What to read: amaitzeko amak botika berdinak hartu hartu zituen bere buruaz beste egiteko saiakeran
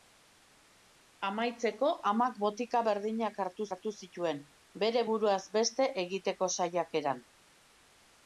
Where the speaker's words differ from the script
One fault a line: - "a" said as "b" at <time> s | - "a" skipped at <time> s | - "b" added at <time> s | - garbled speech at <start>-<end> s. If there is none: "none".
none